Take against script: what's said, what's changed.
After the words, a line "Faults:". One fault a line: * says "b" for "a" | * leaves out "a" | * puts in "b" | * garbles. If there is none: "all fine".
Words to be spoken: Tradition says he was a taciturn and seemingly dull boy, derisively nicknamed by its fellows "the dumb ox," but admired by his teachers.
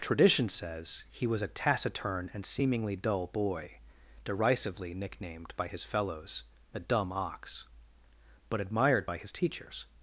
Tradition says he was a taciturn and seemingly dull boy, derisively nicknamed by his fellows "the dumb ox," but admired by his teachers.
Faults:
* says "his" for "its"